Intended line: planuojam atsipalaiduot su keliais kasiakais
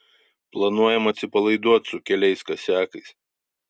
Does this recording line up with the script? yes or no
yes